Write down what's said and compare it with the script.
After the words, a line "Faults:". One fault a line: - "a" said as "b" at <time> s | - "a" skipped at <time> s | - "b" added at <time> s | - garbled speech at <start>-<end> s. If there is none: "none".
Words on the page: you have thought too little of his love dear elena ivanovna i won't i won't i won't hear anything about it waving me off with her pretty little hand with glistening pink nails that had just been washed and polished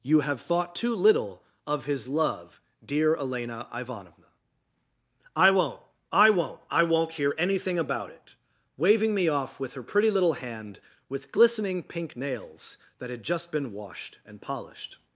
you have thought too little of his love dear elena ivanovna i won't i won't i won't hear anything about it waving me off with her pretty little hand with glistening pink nails that had just been washed and polished
Faults:
none